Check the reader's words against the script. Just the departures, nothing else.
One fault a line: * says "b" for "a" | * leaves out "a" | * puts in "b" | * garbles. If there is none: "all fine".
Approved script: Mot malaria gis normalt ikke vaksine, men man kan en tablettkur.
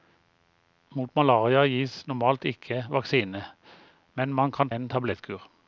all fine